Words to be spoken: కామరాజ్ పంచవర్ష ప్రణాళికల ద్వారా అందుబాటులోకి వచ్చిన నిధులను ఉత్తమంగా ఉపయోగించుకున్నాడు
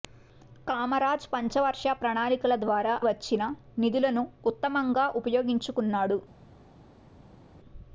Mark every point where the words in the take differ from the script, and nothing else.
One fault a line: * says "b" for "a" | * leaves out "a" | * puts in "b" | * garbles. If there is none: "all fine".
* leaves out "అందుబాటులోకి"